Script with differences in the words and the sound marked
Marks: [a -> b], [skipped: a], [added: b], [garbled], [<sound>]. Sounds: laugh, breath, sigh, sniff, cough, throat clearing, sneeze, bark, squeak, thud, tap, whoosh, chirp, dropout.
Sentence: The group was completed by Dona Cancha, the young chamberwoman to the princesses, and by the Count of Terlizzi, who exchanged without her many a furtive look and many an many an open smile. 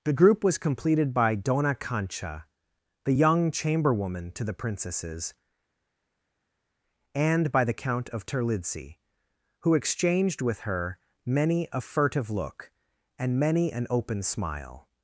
The group was completed by Dona Cancha, the young chamberwoman to the princesses, and by the Count of Terlizzi, who exchanged [without -> with] her many a furtive look and many an [skipped: many an] open smile.